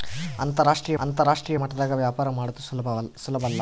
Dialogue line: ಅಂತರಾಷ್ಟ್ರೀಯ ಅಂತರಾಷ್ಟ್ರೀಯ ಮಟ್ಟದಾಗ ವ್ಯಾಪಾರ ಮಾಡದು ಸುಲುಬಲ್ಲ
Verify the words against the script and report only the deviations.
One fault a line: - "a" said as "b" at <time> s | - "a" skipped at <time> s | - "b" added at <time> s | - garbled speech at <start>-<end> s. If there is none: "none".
none